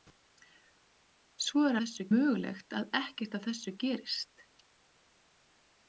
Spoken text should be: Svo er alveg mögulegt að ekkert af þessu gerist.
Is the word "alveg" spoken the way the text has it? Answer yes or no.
no